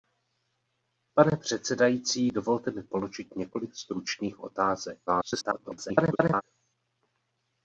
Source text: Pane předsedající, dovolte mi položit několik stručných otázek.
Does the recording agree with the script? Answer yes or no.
no